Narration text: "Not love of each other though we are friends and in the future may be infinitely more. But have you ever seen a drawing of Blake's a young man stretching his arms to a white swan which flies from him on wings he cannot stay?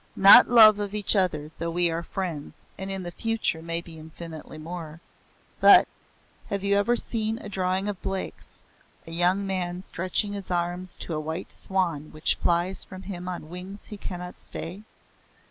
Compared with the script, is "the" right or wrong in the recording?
right